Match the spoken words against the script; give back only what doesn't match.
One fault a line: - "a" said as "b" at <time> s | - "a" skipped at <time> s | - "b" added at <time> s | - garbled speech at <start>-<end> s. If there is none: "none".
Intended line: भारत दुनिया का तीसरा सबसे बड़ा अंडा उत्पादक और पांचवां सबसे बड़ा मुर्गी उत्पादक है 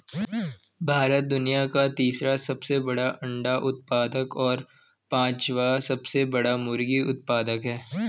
none